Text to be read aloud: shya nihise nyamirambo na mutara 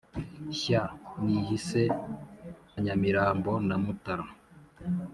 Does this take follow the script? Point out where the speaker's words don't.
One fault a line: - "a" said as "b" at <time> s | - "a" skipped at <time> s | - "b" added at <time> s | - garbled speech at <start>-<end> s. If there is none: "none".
none